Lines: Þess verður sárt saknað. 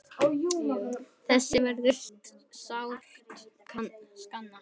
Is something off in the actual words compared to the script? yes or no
no